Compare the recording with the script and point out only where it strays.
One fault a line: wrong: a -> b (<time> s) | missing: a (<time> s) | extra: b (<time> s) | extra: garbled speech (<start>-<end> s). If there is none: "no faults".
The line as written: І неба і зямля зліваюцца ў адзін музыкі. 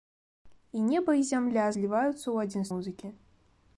no faults